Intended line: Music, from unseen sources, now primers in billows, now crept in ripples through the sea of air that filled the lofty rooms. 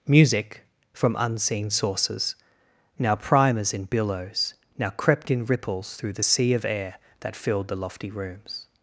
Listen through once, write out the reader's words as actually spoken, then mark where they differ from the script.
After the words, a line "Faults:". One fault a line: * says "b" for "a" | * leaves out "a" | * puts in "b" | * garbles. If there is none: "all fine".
Music, from unseen sources, now primers in billows, now crept in ripples through the sea of air that filled the lofty rooms.
Faults:
all fine